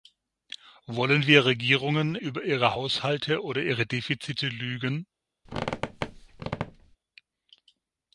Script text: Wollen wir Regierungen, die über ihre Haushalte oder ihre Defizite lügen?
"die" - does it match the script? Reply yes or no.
no